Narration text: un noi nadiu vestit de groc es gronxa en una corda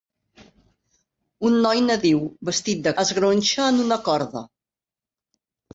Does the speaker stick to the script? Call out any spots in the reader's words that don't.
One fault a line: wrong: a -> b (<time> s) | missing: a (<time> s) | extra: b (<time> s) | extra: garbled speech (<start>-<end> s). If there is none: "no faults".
missing: groc (3.0 s)